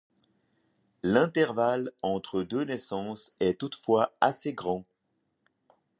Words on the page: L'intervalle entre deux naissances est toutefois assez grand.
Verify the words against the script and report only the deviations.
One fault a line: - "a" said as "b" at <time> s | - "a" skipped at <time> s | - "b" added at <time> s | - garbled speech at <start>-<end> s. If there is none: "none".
none